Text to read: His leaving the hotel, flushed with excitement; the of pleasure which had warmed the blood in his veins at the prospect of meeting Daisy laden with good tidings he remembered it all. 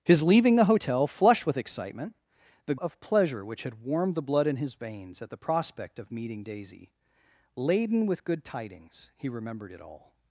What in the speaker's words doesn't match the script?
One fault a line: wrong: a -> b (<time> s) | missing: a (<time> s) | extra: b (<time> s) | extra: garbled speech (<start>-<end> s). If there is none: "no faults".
no faults